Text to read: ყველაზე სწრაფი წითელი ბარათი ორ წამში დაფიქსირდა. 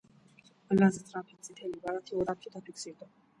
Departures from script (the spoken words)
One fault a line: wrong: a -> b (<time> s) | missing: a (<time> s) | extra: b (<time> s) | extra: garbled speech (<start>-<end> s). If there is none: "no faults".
missing: ორ (2.2 s)